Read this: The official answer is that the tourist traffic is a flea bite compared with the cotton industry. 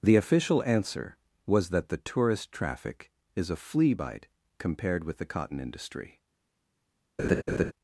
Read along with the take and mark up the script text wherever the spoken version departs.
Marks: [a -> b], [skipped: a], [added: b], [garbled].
The official answer [is -> was] that the tourist traffic is a flea bite compared with the cotton industry.